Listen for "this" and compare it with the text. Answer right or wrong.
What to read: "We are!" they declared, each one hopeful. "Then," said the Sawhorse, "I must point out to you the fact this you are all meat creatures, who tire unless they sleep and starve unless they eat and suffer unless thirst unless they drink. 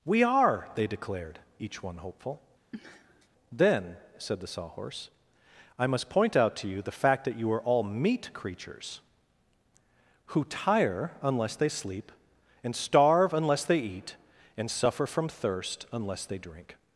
wrong